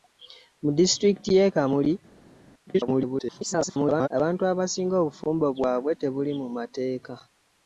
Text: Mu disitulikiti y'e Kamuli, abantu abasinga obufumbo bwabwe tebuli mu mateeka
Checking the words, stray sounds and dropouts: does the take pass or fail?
fail